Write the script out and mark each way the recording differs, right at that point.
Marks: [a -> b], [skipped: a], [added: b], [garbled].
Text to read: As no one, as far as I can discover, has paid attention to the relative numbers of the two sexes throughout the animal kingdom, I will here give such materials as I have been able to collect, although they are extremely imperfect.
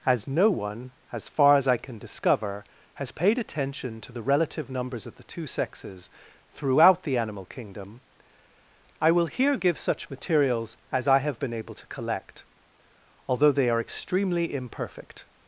As no one, as far as I can discover, has paid attention to the relative numbers of the two sexes throughout the animal kingdom, I will here give such materials as I have been able to collect, although they are extremely imperfect.